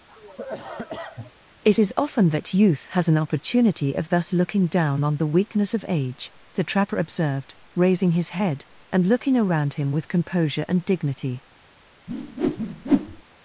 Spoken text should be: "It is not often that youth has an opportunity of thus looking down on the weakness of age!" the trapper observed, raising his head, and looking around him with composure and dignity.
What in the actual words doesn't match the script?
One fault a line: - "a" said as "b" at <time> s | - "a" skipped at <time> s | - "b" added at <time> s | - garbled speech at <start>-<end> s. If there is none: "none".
- "not" skipped at 1.9 s